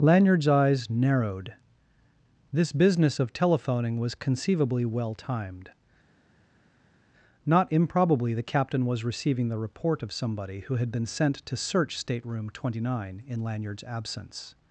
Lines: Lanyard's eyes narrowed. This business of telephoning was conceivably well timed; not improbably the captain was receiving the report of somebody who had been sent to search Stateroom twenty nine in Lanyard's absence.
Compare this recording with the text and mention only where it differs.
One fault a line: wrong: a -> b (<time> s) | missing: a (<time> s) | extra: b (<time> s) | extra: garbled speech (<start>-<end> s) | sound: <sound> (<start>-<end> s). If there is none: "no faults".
no faults